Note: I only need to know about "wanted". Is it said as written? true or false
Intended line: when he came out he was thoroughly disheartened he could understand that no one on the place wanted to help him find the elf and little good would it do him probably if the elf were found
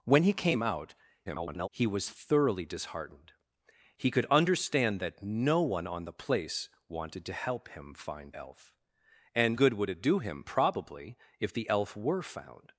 true